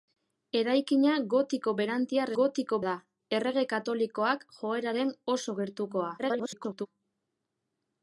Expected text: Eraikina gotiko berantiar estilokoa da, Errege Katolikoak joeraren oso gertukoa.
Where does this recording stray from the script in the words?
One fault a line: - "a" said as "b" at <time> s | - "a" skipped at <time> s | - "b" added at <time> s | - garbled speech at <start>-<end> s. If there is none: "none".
- "estilokoa" said as "gotiko" at 2.4 s
- garbled speech at 6.2-6.9 s